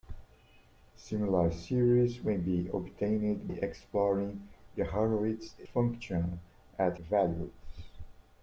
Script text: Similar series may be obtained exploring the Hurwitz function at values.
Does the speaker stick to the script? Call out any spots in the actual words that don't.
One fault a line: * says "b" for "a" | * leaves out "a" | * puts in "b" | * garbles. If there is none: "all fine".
all fine